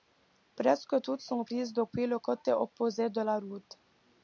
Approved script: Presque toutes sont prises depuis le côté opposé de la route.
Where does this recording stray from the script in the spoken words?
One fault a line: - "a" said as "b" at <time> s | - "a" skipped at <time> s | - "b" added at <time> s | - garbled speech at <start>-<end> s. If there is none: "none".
none